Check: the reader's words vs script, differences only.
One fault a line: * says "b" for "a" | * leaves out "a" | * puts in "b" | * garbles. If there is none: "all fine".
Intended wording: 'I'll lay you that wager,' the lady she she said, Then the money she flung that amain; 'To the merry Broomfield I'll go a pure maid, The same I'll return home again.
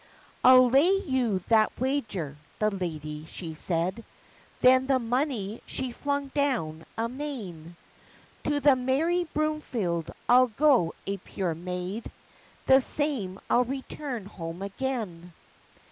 * leaves out "she"
* says "down" for "that"